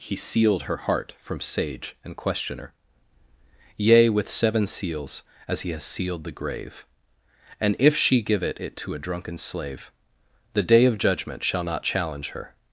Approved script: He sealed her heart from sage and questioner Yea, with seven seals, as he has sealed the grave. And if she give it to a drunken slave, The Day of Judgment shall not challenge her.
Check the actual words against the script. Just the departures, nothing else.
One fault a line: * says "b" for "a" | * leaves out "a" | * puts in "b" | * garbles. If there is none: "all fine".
* puts in "it"